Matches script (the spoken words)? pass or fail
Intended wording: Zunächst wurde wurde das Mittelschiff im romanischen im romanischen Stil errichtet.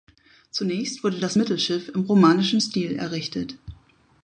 fail